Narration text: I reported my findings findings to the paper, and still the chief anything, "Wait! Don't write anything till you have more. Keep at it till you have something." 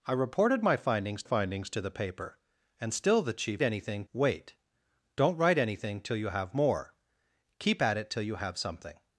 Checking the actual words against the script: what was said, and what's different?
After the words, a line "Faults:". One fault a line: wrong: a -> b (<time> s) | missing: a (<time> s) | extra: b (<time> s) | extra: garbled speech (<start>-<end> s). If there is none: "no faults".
I reported my findings findings to the paper, and still the chief anything, "Wait! Don't write anything till you have more. Keep at it till you have something."
Faults:
no faults